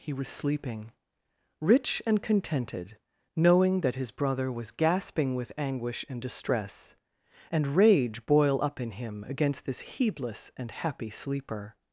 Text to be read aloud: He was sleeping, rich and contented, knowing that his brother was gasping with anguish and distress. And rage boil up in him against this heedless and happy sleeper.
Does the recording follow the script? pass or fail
pass